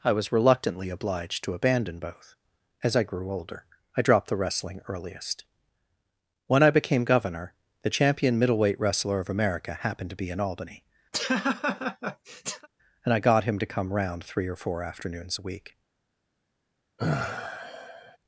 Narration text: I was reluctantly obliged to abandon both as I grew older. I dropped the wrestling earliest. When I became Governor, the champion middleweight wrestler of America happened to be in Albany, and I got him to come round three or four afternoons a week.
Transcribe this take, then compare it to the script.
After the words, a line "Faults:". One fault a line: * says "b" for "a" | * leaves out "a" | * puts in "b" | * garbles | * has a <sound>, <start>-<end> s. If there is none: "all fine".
I was reluctantly obliged to abandon both as I grew older. I dropped the wrestling earliest. When I became Governor, the champion middleweight wrestler of America happened to be in Albany, and I got him to come round three or four afternoons a week.
Faults:
* has a laugh, 11.1-12.7 s
* has a sigh, 17.0-18.2 s